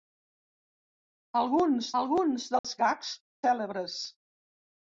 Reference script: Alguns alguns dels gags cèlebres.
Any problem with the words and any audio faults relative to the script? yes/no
yes